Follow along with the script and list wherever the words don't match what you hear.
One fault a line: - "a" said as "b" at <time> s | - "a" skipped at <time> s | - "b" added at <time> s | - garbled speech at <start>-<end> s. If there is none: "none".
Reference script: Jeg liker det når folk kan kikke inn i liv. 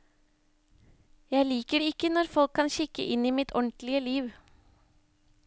- "ikke" added at 1.9 s
- "mitt ordentlige" added at 3.4 s